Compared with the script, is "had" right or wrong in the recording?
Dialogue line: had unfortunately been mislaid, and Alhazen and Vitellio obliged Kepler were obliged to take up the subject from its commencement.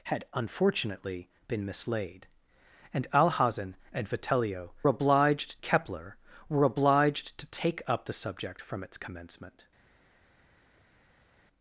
right